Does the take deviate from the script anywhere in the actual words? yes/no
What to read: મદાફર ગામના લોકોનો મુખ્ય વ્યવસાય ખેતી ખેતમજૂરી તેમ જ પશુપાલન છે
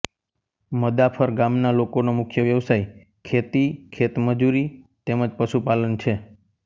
no